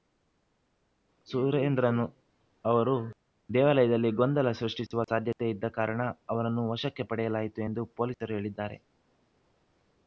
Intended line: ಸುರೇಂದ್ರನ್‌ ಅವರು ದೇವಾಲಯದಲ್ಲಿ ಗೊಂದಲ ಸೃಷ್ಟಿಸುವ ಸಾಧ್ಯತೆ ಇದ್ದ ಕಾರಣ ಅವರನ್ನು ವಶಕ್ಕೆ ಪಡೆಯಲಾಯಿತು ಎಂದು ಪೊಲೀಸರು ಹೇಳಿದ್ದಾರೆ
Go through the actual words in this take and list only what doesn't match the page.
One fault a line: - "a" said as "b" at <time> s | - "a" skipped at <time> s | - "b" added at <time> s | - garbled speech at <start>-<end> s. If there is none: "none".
none